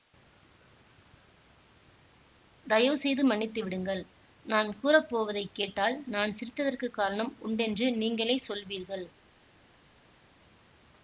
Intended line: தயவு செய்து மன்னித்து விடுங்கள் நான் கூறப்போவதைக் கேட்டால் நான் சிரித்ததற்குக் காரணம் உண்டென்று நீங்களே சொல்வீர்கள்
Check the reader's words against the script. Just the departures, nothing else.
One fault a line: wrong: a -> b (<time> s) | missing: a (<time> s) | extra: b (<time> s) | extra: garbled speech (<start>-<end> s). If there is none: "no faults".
no faults